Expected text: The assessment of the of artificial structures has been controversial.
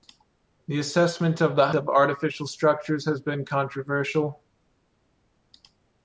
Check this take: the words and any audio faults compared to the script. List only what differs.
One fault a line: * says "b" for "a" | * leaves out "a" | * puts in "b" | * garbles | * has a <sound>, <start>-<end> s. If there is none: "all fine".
all fine